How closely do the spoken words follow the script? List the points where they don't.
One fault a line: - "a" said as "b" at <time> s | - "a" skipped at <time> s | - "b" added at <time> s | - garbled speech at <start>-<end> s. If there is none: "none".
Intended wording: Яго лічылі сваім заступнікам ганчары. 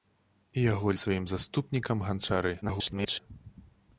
- "лічылі" skipped at 0.9 s
- garbled speech at 2.6-3.2 s